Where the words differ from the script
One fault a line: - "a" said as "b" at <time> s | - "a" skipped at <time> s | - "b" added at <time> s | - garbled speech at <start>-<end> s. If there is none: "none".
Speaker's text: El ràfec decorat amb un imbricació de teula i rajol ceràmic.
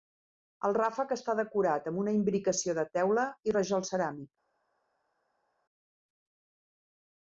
- "està" added at 1.1 s
- "un" said as "una" at 2.0 s